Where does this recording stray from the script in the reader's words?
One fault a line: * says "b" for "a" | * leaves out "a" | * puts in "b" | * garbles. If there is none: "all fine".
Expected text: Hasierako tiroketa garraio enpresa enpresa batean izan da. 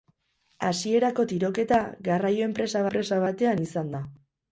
all fine